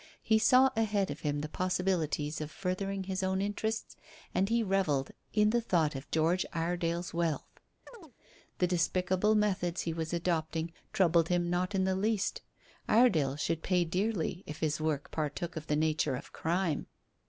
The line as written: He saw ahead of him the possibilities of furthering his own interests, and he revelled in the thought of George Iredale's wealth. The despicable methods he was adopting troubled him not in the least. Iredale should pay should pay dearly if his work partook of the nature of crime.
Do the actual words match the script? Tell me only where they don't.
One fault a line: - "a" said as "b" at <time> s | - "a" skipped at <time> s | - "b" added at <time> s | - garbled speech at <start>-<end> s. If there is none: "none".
- "should pay" skipped at 13.9 s